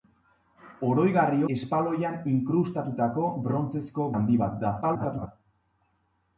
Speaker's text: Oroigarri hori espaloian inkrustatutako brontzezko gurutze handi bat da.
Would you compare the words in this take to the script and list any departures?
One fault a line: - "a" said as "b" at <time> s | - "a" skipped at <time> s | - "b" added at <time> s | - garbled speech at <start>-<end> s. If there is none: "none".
- "hori" skipped at 1.4 s
- "gurutze" skipped at 4.1 s
- garbled speech at 4.8-5.3 s